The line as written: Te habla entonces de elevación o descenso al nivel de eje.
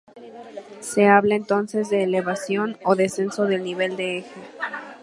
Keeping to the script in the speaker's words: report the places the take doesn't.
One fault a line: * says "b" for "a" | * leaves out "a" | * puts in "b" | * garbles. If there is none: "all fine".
* says "Se" for "Te"
* says "del" for "al"